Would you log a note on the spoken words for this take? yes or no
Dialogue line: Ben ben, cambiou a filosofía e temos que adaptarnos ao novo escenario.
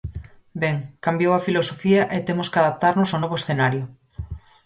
yes